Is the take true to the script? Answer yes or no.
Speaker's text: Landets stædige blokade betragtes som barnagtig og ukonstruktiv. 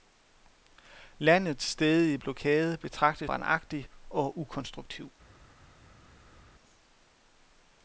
no